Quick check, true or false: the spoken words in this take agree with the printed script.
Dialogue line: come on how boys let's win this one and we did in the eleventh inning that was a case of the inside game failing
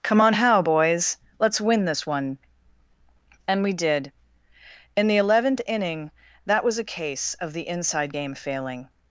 true